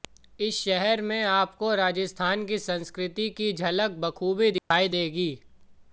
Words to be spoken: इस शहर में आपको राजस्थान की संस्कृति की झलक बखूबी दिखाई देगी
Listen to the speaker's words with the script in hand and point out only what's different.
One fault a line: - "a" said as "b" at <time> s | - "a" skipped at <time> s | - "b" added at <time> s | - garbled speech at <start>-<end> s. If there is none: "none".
none